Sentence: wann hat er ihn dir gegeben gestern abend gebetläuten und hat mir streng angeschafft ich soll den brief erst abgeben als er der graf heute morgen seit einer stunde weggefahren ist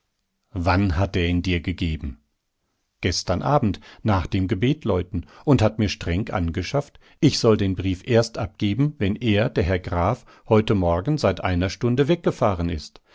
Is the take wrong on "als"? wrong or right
wrong